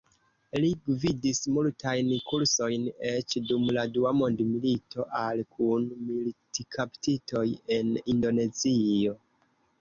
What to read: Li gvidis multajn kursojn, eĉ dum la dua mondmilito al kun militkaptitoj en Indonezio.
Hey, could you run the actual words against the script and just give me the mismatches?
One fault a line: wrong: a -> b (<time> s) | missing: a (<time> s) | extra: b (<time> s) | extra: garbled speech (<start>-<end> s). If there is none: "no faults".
no faults